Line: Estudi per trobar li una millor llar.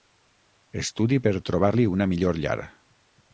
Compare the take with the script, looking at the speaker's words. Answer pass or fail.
pass